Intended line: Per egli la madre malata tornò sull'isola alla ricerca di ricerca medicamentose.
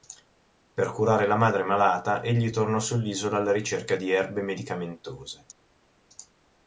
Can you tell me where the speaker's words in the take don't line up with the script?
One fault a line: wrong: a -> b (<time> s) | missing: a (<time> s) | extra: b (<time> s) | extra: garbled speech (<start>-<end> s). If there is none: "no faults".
wrong: egli -> curare (0.9 s)
extra: egli (2.2 s)
wrong: ricerca -> erbe (4.1 s)